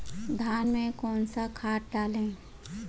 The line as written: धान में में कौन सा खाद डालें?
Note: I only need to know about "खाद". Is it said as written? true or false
true